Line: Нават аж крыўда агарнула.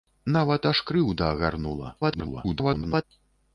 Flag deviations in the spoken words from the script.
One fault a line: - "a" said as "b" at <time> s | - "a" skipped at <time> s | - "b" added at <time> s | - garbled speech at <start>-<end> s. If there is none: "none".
- garbled speech at 2.0-3.0 s